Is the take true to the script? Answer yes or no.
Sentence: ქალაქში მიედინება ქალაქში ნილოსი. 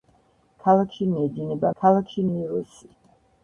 yes